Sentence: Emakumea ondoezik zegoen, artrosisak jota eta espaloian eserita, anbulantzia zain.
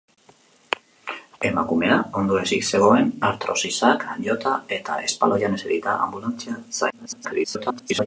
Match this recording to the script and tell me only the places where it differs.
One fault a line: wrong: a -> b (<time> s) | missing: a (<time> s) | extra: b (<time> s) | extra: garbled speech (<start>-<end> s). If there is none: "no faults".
extra: garbled speech (6.9-8.1 s)